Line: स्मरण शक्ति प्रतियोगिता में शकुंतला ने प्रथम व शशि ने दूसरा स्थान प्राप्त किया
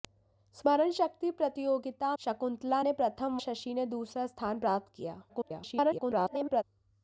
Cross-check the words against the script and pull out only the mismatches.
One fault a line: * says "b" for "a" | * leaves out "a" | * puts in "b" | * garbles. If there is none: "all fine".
* leaves out "में"
* leaves out "व"
* garbles